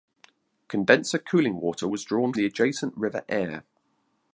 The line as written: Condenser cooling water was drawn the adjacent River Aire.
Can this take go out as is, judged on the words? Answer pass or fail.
pass